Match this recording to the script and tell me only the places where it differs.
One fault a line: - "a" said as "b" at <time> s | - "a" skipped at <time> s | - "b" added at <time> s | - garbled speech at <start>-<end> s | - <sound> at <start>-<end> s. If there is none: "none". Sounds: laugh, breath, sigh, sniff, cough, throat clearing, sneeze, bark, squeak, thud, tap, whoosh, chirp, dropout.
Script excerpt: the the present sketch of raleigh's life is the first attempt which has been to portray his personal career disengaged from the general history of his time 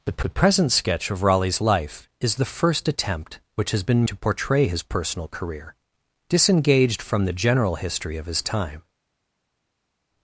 none